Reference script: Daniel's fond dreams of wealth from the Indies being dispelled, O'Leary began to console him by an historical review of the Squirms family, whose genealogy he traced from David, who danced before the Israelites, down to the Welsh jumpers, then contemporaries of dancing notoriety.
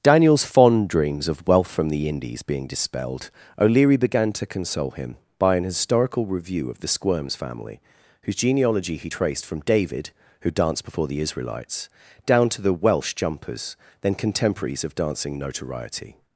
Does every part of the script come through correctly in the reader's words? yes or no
yes